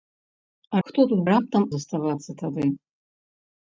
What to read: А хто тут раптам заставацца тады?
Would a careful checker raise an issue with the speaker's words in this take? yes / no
no